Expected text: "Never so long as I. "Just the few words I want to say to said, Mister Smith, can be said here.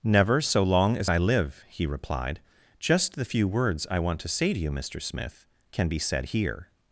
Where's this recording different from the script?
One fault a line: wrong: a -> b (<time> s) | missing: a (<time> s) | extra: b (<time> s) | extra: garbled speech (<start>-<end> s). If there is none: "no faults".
extra: live he replied (1.2 s)
wrong: said -> you (4.6 s)